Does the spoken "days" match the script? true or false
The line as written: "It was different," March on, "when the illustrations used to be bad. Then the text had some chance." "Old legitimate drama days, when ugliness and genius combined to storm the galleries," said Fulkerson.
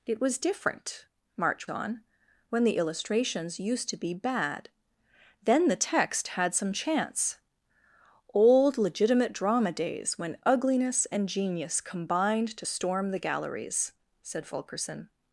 true